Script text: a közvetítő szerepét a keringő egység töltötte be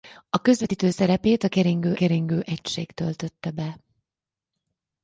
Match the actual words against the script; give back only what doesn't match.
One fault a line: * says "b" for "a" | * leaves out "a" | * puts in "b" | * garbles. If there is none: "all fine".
* puts in "keringő"